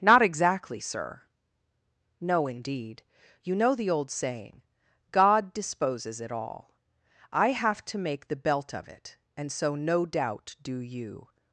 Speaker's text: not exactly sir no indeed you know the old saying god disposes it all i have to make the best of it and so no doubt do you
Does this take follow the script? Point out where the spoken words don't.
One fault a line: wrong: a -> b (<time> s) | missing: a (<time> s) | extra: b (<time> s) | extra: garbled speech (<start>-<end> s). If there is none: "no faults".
wrong: best -> belt (8.4 s)